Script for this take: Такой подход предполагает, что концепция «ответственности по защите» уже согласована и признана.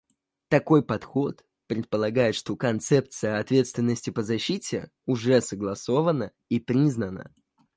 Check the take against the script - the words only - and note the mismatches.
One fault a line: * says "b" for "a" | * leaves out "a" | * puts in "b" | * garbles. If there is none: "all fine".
all fine